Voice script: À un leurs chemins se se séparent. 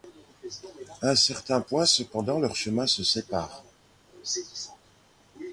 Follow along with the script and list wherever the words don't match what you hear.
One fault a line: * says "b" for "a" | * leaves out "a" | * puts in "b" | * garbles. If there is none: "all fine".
* puts in "certain point cependant"
* leaves out "se"